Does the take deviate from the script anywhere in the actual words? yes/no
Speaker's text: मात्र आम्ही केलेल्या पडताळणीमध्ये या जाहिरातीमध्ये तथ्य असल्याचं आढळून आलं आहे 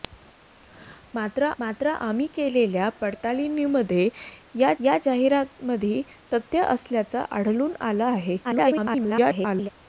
yes